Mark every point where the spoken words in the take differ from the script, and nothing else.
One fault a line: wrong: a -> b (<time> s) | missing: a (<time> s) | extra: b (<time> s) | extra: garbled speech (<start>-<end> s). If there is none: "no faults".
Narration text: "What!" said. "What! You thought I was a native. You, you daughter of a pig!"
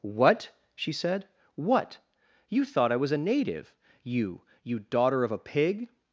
extra: she (0.8 s)